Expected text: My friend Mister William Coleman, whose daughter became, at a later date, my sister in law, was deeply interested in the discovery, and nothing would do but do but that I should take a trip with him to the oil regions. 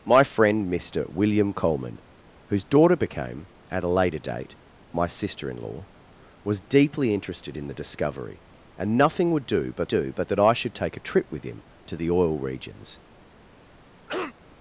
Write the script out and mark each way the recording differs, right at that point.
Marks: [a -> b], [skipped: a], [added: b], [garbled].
My friend Mister William Coleman, whose daughter became, at a later date, my sister in law, was deeply interested in the discovery, and nothing would do but do but that I should take a trip with him to the oil regions.